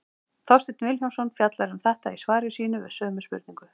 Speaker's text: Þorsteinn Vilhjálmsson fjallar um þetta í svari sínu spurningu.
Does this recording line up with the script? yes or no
no